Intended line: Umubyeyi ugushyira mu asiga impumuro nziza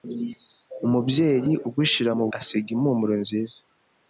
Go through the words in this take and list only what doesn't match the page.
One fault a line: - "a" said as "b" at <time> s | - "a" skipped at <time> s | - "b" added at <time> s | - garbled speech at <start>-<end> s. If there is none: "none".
none